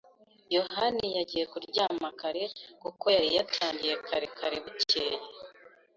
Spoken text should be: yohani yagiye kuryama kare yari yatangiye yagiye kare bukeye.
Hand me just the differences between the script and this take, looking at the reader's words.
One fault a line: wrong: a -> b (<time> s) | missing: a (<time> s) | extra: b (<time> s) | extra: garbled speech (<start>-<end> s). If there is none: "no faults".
extra: kuko (2.8 s)
wrong: yagiye -> kare (4.1 s)